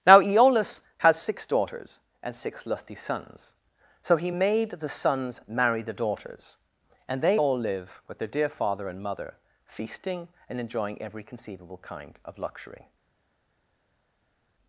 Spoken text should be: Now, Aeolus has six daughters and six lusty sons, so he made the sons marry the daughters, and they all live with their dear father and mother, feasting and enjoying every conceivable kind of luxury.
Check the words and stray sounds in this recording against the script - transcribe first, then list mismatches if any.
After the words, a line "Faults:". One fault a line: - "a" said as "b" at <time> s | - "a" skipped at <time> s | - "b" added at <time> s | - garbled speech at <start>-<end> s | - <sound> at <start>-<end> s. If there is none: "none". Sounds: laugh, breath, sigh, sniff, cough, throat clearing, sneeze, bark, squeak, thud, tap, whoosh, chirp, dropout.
Now, Aeolus has six daughters and six lusty sons, so he made the sons marry the daughters, and they all live with their dear father and mother, feasting and enjoying every conceivable kind of luxury.
Faults:
none